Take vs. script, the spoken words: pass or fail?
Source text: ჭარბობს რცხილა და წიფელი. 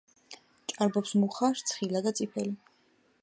fail